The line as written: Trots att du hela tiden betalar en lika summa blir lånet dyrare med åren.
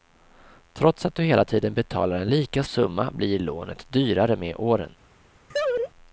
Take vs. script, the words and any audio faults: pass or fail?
fail